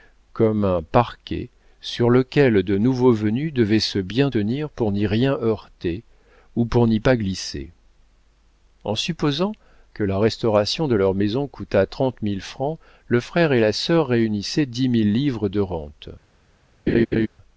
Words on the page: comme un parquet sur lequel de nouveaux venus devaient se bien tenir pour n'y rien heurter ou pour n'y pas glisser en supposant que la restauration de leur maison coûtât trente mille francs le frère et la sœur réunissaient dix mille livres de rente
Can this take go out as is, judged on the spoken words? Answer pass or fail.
pass